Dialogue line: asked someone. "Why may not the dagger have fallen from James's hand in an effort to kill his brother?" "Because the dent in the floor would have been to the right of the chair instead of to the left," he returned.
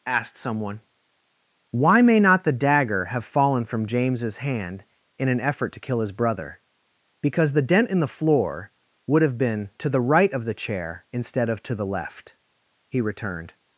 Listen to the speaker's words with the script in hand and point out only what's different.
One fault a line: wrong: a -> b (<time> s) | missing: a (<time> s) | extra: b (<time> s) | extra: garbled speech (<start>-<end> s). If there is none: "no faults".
no faults